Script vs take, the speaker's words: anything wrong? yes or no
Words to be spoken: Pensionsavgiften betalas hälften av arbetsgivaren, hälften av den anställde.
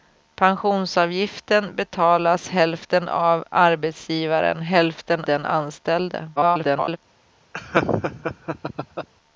yes